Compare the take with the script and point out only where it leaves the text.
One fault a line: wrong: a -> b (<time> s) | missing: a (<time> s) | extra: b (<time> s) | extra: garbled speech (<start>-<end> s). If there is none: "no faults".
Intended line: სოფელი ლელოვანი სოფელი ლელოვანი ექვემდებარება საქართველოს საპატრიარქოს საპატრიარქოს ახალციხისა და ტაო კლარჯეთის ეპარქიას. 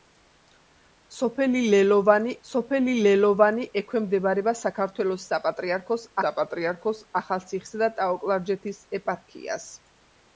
no faults